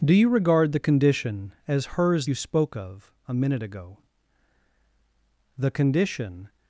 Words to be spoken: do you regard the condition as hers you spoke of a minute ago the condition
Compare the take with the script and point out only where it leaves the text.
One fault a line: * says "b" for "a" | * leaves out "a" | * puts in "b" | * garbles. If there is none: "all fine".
all fine